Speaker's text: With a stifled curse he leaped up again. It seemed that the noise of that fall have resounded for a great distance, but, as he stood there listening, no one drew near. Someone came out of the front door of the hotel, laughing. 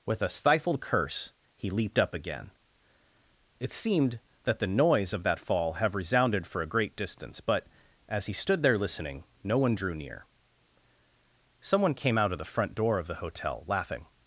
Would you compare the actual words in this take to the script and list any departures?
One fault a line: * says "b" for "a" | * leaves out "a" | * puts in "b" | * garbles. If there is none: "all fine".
all fine